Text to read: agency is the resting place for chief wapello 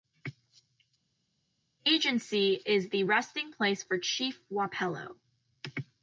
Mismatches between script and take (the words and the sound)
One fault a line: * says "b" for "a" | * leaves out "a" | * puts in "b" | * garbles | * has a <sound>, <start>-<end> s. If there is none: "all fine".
all fine